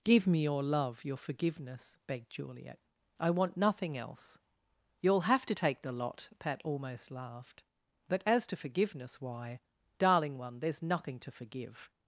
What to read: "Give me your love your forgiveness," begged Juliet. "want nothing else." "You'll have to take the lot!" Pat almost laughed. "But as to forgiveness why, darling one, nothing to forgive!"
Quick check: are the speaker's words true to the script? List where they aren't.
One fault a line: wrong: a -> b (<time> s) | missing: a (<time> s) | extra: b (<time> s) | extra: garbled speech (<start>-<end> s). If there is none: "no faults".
extra: I (3.2 s)
extra: there's (10.6 s)